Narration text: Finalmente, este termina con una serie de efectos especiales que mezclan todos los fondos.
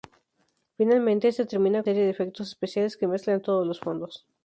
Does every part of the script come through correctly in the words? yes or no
no